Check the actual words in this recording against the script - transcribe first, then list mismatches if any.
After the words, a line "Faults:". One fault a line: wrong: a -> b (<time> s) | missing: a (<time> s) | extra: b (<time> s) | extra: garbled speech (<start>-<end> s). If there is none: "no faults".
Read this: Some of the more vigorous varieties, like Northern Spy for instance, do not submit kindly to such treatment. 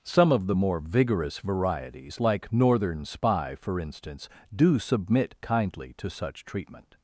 Some of the more vigorous varieties, like Northern Spy for instance, do submit kindly to such treatment.
Faults:
missing: not (4.8 s)